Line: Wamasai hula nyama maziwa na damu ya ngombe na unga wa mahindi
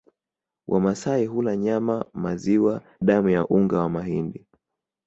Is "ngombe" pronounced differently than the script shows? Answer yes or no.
yes